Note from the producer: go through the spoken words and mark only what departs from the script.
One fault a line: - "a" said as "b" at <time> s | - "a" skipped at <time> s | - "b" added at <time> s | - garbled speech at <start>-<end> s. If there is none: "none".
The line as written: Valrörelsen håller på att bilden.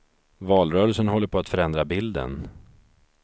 - "förändra" added at 1.5 s